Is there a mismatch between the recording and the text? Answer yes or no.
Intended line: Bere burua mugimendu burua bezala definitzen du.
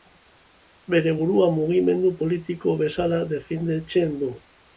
yes